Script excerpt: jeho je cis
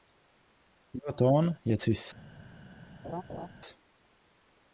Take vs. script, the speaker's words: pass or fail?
fail